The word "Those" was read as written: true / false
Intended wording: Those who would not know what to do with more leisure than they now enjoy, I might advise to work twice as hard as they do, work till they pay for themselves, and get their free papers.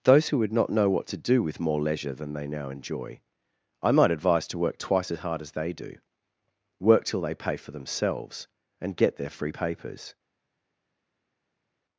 true